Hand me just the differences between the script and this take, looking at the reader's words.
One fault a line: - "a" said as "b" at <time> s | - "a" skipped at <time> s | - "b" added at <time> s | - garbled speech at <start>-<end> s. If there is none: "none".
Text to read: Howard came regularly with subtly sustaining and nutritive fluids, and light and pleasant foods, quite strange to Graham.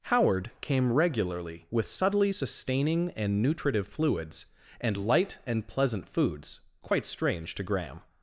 none